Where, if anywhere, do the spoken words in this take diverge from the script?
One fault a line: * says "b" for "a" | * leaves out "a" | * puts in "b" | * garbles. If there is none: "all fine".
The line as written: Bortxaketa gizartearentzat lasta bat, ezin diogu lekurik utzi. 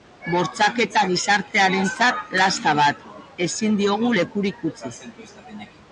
all fine